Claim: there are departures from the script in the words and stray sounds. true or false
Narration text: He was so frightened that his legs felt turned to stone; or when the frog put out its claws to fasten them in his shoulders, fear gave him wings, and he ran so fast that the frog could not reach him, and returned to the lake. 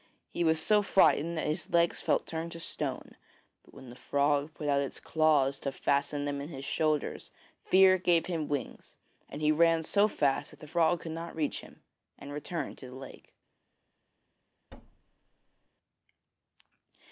true